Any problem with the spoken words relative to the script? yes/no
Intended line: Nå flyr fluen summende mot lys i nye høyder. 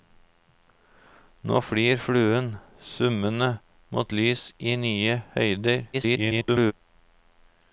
yes